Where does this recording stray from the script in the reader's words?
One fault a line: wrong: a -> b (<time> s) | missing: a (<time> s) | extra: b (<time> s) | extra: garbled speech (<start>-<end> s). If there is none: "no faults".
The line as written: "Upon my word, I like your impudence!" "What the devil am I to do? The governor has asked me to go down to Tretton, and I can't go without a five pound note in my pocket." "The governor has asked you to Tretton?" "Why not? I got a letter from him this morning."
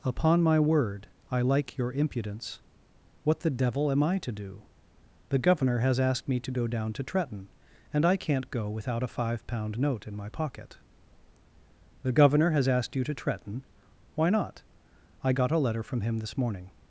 no faults